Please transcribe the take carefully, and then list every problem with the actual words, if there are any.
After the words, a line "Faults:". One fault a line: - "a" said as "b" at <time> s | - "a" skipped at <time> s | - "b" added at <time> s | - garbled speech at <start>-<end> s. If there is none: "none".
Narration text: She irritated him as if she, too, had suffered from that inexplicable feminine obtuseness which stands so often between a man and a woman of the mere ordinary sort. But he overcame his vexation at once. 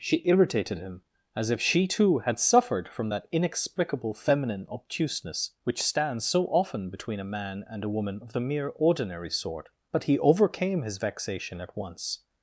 She irritated him as if she, too, had suffered from that inexplicable feminine obtuseness which stands so often between a man and a woman of the mere ordinary sort. But he overcame his vexation at once.
Faults:
none